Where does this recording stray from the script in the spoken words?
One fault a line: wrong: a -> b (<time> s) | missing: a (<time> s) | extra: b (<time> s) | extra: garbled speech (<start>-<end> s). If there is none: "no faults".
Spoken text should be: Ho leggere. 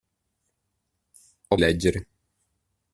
no faults